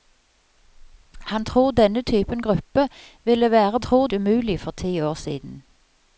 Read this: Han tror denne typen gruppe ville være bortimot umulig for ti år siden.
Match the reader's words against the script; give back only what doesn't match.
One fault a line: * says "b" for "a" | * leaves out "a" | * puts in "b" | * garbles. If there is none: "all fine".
* says "tror" for "bortimot"